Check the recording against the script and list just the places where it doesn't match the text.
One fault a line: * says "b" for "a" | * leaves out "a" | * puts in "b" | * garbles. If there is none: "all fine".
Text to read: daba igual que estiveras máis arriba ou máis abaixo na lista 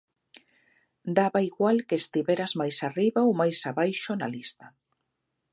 all fine